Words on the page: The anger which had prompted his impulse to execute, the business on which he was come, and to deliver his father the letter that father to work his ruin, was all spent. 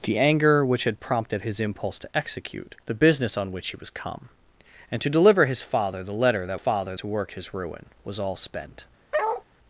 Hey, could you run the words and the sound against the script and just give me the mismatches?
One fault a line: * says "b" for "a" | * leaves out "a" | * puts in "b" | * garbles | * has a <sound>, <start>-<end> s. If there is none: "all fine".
* has a bark, 9.1-9.4 s